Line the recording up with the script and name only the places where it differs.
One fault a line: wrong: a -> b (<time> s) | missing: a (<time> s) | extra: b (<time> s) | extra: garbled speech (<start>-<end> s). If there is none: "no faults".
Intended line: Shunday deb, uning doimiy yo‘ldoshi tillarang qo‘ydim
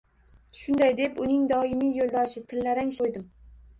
no faults